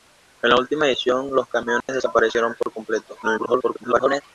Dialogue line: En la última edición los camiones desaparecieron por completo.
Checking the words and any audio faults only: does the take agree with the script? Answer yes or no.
no